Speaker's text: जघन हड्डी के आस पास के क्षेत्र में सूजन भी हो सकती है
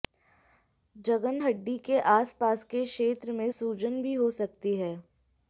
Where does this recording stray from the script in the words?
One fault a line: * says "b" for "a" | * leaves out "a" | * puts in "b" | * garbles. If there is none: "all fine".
all fine